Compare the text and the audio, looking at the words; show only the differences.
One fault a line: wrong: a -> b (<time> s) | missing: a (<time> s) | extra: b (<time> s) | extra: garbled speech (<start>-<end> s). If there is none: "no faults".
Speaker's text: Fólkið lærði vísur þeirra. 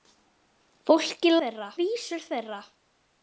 wrong: lærði -> þeirra (1.4 s)